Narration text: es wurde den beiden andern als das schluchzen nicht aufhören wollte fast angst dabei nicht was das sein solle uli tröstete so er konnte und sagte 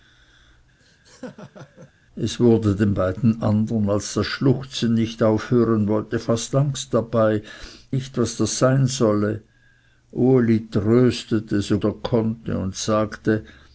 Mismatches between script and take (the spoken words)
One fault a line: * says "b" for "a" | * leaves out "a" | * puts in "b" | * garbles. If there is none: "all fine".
all fine